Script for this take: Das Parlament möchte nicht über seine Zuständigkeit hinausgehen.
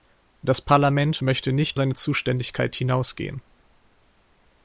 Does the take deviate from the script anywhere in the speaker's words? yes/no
yes